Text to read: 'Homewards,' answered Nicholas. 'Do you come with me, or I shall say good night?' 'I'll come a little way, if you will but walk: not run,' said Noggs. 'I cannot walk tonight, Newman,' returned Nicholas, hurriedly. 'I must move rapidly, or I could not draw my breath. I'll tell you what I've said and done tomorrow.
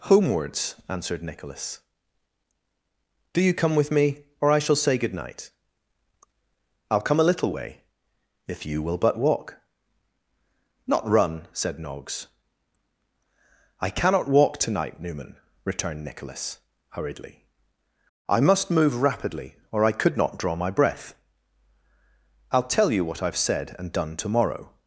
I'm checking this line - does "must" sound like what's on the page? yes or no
yes